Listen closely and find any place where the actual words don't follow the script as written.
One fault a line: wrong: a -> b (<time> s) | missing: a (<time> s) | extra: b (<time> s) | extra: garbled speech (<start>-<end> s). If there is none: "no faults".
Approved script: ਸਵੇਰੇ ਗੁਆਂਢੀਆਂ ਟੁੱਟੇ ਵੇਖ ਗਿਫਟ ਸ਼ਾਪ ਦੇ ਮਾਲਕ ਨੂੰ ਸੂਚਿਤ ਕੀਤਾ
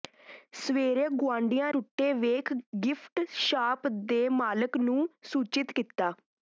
no faults